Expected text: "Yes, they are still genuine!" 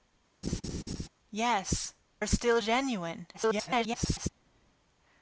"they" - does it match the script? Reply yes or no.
no